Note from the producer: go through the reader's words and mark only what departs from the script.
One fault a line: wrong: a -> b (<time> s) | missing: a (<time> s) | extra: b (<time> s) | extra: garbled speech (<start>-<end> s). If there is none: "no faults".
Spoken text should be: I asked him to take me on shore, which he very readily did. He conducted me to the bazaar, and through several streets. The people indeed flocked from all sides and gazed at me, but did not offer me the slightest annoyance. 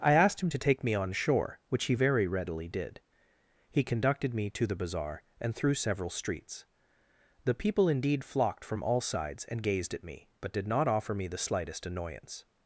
no faults